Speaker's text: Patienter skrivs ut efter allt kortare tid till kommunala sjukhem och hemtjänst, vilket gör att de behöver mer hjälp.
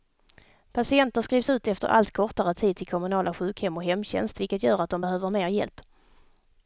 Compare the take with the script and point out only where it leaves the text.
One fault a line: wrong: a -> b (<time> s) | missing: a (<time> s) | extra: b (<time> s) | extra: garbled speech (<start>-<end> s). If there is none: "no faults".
no faults